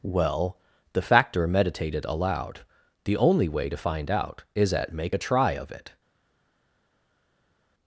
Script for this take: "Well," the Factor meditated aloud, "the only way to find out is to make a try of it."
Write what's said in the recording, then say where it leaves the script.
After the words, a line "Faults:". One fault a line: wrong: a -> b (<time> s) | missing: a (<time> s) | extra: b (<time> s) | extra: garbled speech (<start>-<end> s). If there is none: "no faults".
"Well," the Factor meditated aloud, "the only way to find out is at make a try of it."
Faults:
wrong: to -> at (4.7 s)